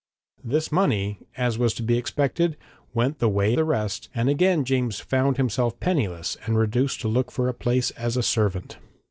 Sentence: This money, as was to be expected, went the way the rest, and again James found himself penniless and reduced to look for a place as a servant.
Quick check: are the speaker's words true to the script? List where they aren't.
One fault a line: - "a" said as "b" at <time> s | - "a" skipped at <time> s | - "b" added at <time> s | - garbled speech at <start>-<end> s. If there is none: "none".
none